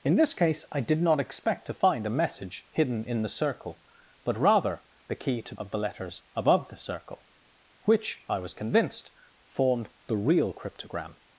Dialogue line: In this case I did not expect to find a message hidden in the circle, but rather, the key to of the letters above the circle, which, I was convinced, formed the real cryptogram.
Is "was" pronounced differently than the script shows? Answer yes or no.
no